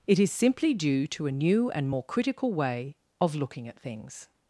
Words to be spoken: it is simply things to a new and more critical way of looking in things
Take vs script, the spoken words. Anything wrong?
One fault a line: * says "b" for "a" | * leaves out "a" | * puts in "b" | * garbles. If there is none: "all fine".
* says "due" for "things"
* says "at" for "in"